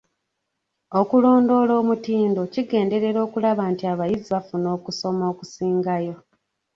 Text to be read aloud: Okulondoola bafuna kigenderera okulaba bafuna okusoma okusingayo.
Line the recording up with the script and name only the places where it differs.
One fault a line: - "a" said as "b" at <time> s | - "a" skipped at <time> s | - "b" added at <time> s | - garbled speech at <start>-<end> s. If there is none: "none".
- "bafuna" said as "omutindo" at 1.8 s
- "nti abayizi" added at 3.7 s